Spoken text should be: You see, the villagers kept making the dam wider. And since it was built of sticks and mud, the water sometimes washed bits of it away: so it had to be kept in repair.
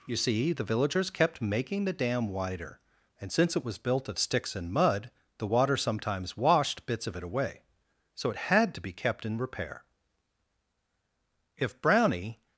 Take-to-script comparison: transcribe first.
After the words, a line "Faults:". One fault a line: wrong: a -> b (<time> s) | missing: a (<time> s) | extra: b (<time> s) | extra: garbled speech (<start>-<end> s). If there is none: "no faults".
You see, the villagers kept making the dam wider. And since it was built of sticks and mud, the water sometimes washed bits of it away: so it had to be kept in repair. If Brownie
Faults:
extra: If Brownie (11.6 s)